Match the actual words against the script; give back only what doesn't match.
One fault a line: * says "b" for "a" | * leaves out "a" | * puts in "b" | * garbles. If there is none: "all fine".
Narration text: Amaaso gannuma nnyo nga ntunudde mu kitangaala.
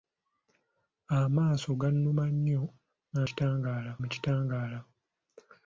* says "kitangaala" for "ntunudde"